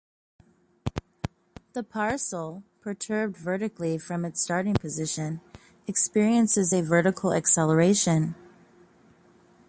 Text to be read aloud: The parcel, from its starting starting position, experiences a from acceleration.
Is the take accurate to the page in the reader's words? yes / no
no